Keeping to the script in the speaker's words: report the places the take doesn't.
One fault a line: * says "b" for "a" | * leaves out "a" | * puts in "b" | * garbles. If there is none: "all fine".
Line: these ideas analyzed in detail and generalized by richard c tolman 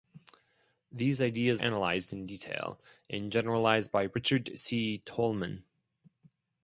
all fine